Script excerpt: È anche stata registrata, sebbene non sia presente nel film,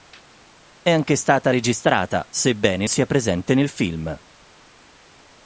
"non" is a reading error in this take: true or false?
true